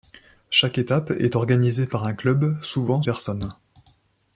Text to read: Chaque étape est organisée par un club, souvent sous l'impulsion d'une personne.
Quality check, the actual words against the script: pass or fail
fail